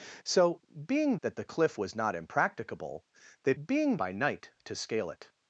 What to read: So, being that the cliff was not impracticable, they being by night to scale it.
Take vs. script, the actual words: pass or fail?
pass